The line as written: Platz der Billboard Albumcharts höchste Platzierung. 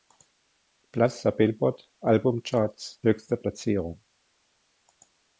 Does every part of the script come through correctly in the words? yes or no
yes